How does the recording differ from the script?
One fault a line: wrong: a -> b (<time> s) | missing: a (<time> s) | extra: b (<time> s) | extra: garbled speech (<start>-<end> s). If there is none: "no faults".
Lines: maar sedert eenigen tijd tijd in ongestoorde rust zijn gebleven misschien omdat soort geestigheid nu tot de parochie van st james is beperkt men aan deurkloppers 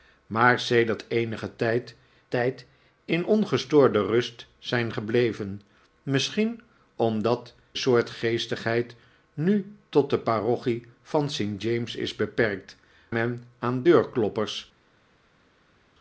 no faults